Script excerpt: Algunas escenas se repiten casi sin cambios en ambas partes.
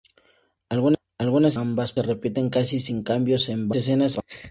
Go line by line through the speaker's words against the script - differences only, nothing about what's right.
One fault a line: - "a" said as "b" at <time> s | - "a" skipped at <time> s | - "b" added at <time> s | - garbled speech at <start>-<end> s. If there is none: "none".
- "escenas" said as "ambas" at 1.5 s
- "ambas" said as "escenas" at 3.8 s